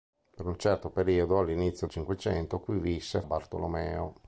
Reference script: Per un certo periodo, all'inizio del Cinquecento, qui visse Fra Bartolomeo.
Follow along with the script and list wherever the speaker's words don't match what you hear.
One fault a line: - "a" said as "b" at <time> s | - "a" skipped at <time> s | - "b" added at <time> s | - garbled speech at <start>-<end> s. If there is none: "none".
- "del" skipped at 1.9 s
- "Fra" skipped at 3.2 s